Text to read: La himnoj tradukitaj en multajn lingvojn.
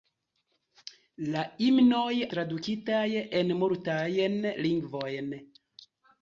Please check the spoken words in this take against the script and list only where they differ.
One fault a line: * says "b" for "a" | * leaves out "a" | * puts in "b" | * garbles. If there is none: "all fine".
all fine